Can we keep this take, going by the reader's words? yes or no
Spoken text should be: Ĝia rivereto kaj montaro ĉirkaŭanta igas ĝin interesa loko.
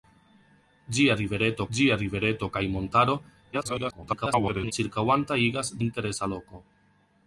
no